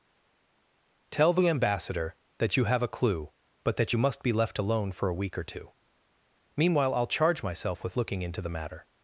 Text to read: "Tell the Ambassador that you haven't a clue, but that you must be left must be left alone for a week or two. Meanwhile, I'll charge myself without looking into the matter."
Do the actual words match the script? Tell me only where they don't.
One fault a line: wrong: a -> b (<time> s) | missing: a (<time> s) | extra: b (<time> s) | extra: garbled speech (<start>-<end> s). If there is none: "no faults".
wrong: haven't -> have (2.7 s)
missing: must be left (4.6 s)
wrong: without -> with (7.8 s)